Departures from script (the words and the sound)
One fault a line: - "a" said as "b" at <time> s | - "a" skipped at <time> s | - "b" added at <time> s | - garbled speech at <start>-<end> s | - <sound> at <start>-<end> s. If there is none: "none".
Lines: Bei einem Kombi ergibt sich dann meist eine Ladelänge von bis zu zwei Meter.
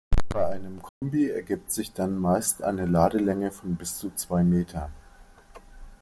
- dropout at 0.9-1.0 s